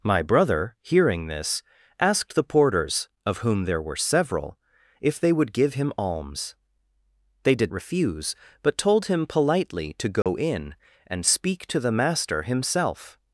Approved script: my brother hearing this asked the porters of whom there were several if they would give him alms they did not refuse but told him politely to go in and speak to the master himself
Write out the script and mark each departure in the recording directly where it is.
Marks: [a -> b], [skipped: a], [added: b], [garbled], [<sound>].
my brother hearing this asked the porters of whom there were several if they would give him alms they did [skipped: not] refuse but told him politely to go [dropout] in and speak to the master himself